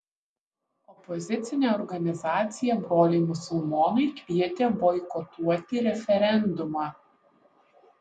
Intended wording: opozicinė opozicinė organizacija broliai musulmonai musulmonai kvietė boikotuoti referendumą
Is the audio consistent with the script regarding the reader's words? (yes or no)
no